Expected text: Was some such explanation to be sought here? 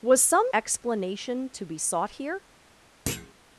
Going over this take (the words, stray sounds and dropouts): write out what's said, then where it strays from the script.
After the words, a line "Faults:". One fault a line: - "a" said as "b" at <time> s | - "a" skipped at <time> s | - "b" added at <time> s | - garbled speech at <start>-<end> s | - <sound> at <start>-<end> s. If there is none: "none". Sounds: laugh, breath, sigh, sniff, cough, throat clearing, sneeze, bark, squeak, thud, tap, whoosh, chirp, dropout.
Was some explanation to be sought here?
Faults:
- "such" skipped at 0.5 s
- thud at 3.1-3.3 s